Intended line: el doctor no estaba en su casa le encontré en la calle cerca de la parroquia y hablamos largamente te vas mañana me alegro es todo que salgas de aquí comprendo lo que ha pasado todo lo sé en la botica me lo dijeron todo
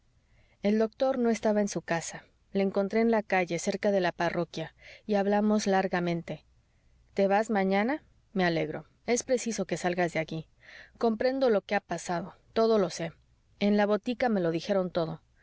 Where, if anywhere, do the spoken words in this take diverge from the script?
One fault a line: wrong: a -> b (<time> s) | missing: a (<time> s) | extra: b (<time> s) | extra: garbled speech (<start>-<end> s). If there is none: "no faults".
wrong: todo -> preciso (9.2 s)